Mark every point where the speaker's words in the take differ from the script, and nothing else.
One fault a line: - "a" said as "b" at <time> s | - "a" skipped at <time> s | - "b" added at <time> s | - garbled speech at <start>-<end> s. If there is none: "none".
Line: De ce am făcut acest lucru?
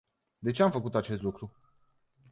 none